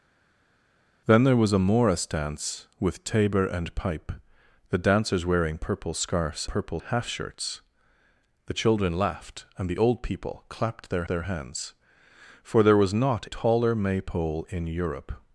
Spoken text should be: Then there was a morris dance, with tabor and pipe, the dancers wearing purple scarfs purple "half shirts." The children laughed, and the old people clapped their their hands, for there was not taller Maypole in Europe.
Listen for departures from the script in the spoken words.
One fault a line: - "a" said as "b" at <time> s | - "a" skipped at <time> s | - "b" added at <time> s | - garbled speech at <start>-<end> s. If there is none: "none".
none